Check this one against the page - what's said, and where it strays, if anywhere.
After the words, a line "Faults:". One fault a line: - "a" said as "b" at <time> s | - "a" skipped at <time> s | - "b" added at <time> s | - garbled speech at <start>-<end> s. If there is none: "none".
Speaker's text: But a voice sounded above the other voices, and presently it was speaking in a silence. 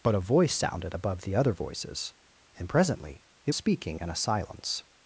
But a voice sounded above the other voices, and presently it speaking in a silence.
Faults:
- "was" skipped at 3.5 s